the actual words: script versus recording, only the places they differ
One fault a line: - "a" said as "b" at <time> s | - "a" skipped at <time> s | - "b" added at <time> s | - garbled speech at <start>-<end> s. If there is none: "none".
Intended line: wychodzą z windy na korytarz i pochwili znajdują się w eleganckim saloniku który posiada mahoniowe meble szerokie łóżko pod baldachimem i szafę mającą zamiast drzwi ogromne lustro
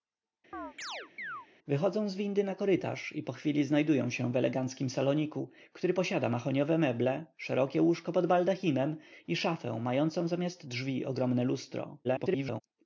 - garbled speech at 12.0-12.6 s